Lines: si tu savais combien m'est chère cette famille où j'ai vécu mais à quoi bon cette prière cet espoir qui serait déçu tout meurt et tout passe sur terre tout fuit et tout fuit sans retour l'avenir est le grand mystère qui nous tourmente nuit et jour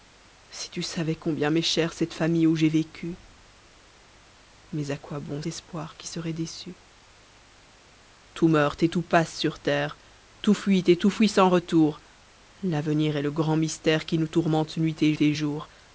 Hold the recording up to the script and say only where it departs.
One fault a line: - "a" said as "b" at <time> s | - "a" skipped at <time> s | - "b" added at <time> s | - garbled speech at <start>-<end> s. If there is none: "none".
- "cette prière cet" skipped at 5.4 s
- "et" added at 15.2 s